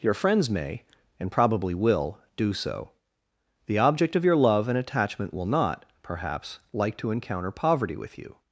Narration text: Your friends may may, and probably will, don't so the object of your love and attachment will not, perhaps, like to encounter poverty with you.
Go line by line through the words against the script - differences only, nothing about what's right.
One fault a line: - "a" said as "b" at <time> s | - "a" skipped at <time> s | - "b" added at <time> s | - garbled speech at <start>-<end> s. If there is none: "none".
- "may" skipped at 0.8 s
- "don't" said as "do" at 2.4 s